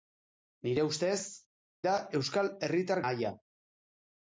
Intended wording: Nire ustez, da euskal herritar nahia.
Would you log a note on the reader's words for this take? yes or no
no